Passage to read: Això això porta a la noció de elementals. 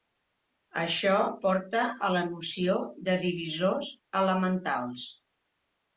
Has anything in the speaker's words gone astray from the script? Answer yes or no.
yes